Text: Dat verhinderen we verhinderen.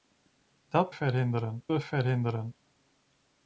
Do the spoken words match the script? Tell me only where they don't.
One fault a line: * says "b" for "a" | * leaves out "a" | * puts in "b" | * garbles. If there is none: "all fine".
all fine